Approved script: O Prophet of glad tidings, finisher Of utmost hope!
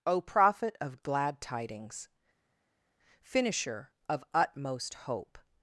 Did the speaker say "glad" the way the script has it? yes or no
yes